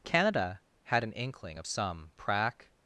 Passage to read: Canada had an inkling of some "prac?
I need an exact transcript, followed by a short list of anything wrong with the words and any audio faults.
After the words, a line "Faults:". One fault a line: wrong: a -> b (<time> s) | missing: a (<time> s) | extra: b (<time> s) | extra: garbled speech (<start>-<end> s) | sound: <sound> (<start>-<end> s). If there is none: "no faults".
Canada had an inkling of some "prac?
Faults:
no faults